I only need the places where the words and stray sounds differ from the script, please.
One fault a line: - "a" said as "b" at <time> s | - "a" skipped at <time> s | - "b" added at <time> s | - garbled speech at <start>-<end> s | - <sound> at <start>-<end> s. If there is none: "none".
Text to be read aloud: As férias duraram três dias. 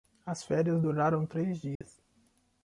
- dropout at 1.8-1.8 s